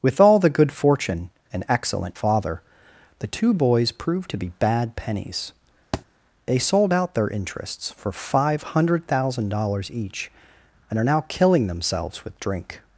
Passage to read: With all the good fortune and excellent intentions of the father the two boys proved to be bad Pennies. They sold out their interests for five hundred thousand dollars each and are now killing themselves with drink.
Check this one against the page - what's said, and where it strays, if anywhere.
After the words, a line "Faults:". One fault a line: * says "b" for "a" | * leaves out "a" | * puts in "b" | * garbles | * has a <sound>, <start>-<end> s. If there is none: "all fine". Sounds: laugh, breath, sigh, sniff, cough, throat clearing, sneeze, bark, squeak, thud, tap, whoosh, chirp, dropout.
With all the good fortune and excellent father the two boys proved to be bad Pennies. They sold out their interests for five hundred thousand dollars each and are now killing themselves with drink.
Faults:
* leaves out "intentions of the"
* has a thud, 5.9-6.1 s